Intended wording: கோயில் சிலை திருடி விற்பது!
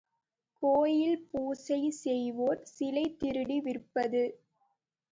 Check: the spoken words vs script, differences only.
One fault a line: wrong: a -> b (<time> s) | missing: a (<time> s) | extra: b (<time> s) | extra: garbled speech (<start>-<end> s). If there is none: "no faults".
extra: பூசை செய்வோர் (1.3 s)